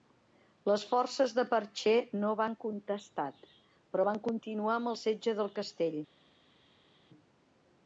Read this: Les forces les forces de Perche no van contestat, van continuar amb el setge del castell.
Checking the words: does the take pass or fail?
fail